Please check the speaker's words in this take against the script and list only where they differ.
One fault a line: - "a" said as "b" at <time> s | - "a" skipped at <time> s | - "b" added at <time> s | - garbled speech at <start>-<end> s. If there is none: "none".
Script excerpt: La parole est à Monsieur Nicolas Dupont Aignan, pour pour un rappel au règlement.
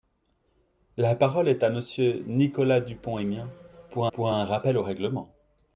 none